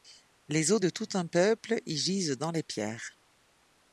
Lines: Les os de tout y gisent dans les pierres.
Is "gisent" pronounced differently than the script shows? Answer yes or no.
no